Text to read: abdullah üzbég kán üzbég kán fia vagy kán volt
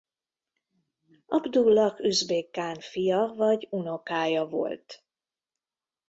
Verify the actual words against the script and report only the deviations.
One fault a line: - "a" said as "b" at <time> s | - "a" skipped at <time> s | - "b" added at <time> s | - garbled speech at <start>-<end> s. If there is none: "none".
- "üzbég kán" skipped at 2.8 s
- "kán" said as "unokája" at 3.7 s